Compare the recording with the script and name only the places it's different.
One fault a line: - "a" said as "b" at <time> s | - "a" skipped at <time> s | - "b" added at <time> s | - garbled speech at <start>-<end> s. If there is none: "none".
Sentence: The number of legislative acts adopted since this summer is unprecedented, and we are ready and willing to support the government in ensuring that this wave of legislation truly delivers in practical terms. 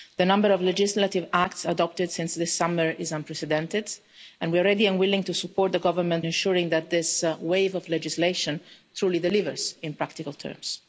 - "in" skipped at 6.3 s